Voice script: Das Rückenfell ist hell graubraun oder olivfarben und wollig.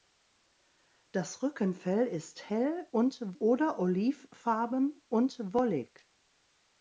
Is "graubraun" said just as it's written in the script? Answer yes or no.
no